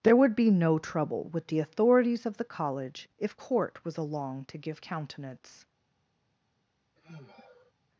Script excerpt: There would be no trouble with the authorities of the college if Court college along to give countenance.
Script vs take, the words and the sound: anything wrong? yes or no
yes